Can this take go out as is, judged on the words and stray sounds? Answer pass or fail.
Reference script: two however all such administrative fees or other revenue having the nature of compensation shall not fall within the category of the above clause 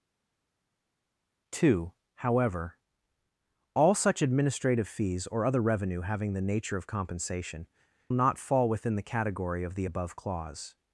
fail